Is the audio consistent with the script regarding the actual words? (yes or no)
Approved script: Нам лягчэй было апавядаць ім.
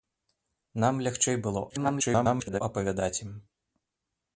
no